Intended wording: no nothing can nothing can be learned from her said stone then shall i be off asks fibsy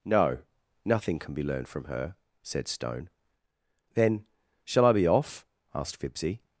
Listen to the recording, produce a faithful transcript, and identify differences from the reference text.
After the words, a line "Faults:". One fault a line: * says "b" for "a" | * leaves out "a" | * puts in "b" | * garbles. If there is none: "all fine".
no nothing can be learned from her said stone then shall i be off asked fibsy
Faults:
* leaves out "nothing can"
* says "asked" for "asks"